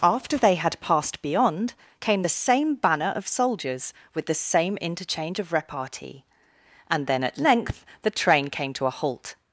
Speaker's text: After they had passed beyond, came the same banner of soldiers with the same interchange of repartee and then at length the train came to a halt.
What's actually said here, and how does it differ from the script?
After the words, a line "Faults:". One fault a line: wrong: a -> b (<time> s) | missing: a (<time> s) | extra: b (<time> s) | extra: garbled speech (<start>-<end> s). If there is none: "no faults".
After they had passed beyond, came the same banner of soldiers with the same interchange of repartee and then at length the train came to a halt.
Faults:
no faults